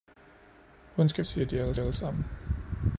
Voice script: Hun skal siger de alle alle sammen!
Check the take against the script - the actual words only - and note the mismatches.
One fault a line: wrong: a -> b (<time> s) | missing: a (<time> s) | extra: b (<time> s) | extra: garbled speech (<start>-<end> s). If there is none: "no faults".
no faults